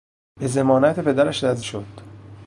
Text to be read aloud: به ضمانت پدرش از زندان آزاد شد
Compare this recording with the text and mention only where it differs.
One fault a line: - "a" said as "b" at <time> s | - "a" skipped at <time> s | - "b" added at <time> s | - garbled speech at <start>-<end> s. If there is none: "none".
- "زندان آزاد" skipped at 1.6 s